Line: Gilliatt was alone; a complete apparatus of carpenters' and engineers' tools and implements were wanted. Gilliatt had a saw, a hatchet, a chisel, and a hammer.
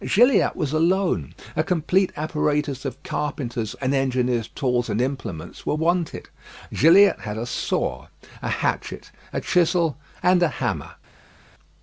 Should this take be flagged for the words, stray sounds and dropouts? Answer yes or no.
no